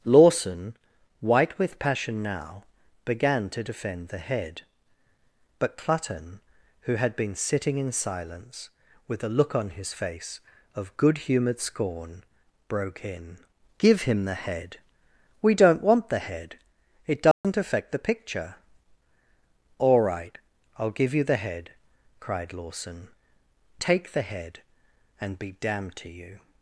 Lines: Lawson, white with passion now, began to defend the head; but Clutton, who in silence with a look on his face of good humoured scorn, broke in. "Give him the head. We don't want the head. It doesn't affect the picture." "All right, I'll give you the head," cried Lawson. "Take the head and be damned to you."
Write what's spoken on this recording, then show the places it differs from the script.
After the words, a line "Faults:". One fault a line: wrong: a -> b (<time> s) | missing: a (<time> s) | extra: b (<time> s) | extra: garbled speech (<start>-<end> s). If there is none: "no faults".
Lawson, white with passion now, began to defend the head; but Clutton, who had been sitting in silence with a look on his face of good humoured scorn, broke in. "Give him the head. We don't want the head. It doesn't affect the picture." "All right, I'll give you the head," cried Lawson. "Take the head and be damned to you."
Faults:
extra: had been sitting (6.9 s)